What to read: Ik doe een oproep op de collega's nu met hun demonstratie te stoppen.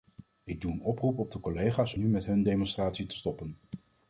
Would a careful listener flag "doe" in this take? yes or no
no